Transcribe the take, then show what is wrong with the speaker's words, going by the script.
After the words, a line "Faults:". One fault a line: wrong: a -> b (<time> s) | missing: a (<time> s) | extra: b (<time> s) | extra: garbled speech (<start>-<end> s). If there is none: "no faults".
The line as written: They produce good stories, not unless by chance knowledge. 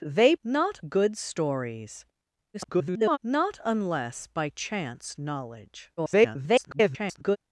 They not good stories, [garbled] not unless by chance knowledge. [garbled]
Faults:
wrong: produce -> not (0.4 s)
extra: garbled speech (2.5-3.2 s)
extra: garbled speech (6.0-7.4 s)